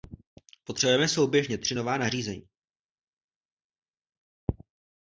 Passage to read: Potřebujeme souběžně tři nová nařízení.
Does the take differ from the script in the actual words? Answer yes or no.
no